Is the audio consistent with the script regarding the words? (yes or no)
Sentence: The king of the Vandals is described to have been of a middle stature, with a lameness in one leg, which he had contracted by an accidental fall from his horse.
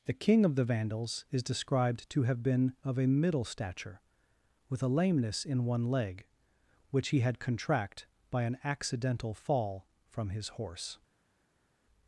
no